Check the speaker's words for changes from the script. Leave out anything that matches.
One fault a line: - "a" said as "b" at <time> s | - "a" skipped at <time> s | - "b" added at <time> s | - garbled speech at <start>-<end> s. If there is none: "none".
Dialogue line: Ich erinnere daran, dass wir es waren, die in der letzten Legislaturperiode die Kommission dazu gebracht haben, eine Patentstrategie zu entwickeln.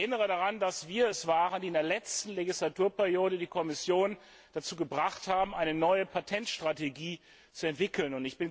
- "neue" added at 5.7 s